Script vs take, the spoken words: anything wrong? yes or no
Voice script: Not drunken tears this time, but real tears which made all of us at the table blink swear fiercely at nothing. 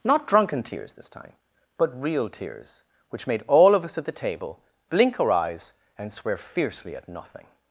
yes